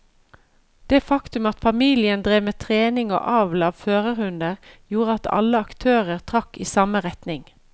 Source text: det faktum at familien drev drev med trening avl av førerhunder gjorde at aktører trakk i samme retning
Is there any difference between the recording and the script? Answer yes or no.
yes